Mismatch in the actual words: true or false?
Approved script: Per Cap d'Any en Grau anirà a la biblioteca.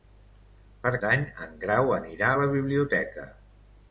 true